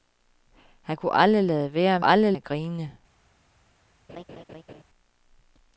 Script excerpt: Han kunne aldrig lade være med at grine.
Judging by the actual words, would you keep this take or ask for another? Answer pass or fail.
fail